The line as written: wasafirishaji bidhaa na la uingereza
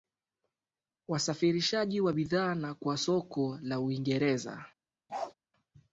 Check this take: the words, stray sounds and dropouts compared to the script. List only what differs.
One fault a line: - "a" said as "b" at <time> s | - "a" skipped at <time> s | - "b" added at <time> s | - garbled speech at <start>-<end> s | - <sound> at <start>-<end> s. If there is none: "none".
- "wa" added at 2.0 s
- "kwa soko" added at 2.7 s
- bark at 5.1-5.3 s